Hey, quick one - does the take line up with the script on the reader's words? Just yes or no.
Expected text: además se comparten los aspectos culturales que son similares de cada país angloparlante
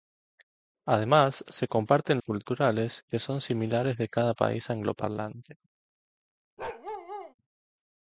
no